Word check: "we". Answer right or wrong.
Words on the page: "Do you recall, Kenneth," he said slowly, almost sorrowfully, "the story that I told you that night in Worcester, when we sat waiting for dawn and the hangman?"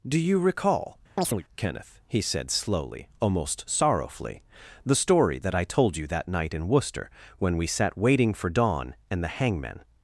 right